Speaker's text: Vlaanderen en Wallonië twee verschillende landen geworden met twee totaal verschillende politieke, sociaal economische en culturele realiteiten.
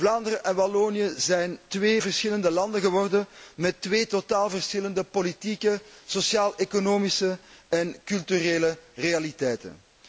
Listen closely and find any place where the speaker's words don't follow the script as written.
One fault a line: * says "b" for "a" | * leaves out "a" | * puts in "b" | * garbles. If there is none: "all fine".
* puts in "zijn"